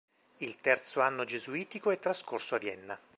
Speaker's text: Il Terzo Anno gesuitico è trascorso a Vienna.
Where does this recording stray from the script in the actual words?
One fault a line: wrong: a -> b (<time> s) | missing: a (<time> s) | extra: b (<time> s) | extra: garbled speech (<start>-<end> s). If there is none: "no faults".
no faults